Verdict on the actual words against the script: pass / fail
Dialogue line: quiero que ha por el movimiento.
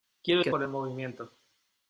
pass